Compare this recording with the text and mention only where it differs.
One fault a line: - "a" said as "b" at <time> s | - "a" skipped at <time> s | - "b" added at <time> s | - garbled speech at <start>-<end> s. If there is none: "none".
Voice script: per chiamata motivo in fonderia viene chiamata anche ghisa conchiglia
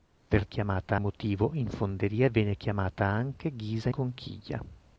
none